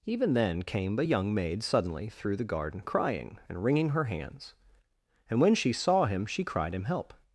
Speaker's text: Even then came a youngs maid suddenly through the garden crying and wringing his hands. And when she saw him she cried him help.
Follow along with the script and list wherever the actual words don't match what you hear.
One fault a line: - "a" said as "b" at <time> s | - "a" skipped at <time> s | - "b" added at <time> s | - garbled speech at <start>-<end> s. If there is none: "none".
- "youngs" said as "young" at 1.0 s
- "his" said as "her" at 3.9 s